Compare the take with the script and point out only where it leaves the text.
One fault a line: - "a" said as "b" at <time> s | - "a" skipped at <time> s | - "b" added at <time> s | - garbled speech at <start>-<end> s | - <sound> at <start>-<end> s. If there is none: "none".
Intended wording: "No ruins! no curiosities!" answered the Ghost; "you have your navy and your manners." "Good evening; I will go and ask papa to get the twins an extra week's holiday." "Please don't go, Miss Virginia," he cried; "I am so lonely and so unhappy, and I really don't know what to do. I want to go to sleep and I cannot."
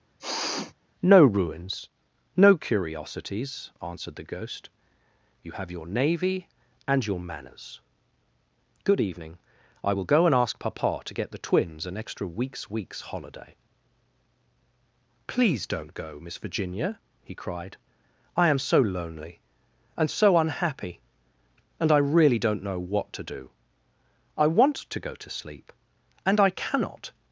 - sniff at 0.2-0.7 s
- "week's" added at 12.7 s